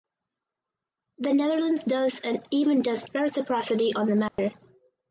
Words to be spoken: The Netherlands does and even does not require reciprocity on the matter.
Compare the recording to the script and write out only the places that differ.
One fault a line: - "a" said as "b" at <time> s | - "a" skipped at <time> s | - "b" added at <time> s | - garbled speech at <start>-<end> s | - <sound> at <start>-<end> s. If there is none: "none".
- "not require" skipped at 3.0 s
- dropout at 4.3-4.4 s